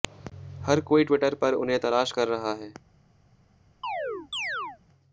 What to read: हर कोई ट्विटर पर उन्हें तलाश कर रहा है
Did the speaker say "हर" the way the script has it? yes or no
yes